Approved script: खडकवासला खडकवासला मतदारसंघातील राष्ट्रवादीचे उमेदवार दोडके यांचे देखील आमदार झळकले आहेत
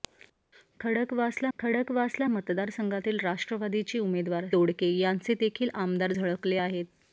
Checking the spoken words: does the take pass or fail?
pass